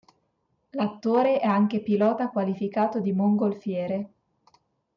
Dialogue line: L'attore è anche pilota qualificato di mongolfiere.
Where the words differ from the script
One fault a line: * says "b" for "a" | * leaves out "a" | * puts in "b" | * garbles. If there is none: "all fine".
all fine